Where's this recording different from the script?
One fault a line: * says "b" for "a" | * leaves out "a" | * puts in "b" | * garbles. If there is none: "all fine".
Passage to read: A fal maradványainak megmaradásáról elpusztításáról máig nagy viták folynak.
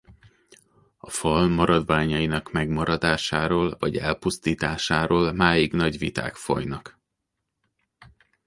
* puts in "vagy"